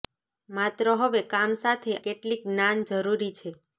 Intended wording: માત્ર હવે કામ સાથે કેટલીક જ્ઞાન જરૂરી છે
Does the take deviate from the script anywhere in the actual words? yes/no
no